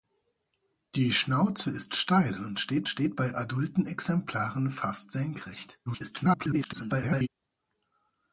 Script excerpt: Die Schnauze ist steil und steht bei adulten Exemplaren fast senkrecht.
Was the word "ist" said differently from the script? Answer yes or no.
no